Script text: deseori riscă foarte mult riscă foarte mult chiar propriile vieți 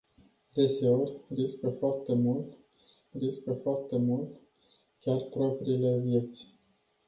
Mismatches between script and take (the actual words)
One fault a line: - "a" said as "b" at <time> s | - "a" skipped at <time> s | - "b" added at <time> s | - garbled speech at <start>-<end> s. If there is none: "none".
none